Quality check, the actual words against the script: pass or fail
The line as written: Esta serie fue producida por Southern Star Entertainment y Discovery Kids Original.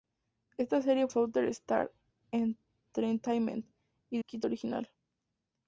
fail